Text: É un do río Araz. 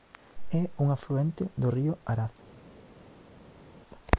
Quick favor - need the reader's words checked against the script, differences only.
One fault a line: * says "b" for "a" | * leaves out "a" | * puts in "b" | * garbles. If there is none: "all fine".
* puts in "afluente"